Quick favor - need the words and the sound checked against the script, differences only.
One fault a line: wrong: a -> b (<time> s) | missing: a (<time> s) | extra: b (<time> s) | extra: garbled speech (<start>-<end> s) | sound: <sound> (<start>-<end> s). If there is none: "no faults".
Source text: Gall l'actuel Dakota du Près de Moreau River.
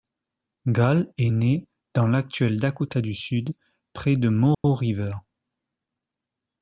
extra: est né dans (1.2 s)
extra: Sud (3.1 s)
sound: dropout (4.5-4.6 s)